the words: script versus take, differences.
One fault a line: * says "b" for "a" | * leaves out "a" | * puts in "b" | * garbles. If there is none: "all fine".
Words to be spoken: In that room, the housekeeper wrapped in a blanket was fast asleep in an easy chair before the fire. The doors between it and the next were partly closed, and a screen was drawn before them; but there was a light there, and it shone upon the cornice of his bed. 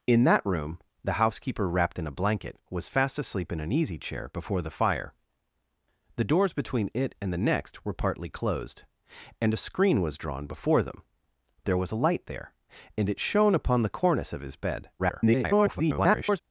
* leaves out "but"
* garbles